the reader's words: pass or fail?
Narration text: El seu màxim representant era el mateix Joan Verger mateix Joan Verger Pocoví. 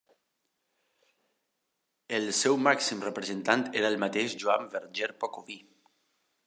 fail